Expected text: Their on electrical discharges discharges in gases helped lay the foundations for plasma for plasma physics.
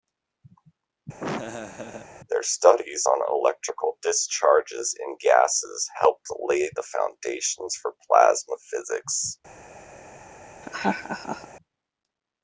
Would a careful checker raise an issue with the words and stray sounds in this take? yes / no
yes